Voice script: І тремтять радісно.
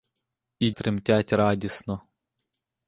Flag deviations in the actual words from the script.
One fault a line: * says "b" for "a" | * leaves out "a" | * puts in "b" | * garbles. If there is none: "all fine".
all fine